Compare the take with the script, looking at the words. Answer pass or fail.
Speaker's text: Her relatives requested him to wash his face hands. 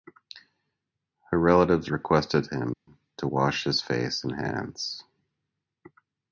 fail